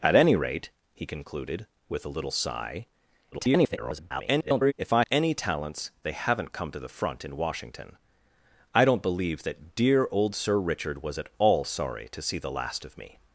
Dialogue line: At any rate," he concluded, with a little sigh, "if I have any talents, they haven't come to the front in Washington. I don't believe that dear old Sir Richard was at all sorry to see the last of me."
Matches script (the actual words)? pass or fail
fail